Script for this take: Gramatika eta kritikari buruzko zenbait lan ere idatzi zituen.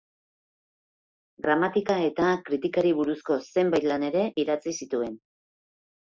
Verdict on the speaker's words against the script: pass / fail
pass